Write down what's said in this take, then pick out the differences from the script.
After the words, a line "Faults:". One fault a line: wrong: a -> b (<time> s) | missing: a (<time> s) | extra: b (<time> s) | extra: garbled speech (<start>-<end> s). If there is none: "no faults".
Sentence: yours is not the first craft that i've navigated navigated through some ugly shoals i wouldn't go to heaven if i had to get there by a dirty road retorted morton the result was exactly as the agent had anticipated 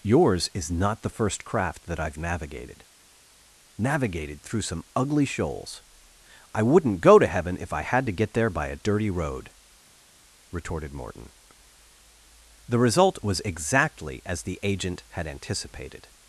yours is not the first craft that i've navigated navigated through some ugly shoals i wouldn't go to heaven if i had to get there by a dirty road retorted morton the result was exactly as the agent had anticipated
Faults:
no faults